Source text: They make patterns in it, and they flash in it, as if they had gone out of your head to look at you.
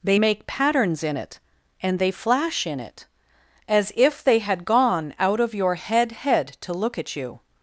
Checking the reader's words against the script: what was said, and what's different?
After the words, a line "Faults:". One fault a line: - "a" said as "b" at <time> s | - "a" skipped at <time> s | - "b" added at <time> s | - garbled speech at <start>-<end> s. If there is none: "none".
They make patterns in it, and they flash in it, as if they had gone out of your head head to look at you.
Faults:
- "head" added at 6.1 s